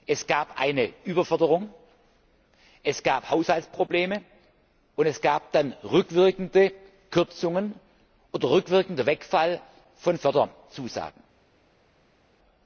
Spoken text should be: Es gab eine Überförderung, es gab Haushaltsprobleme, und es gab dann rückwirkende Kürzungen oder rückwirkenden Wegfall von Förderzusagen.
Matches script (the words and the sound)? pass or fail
pass